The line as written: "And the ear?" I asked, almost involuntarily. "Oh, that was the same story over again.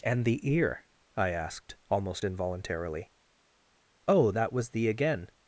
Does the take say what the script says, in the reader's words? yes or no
no